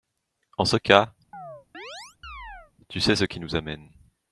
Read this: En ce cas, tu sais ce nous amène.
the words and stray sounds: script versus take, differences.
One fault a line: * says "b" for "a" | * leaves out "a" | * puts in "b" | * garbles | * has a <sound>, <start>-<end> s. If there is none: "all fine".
* has a chirp, 1.3-2.7 s
* puts in "qui"